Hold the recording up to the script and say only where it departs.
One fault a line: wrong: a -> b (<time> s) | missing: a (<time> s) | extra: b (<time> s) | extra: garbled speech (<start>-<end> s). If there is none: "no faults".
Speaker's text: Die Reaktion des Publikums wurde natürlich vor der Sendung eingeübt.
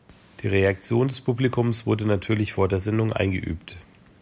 no faults